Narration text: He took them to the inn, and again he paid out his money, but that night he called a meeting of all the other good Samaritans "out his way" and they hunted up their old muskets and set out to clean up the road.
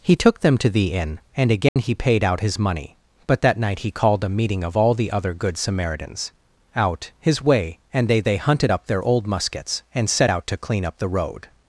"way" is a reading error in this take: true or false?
false